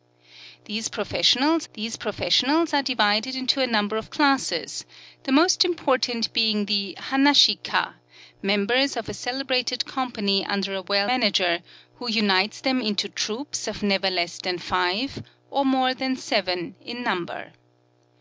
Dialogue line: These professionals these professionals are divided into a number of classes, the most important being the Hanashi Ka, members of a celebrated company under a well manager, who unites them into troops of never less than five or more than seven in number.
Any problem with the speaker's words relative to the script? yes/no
no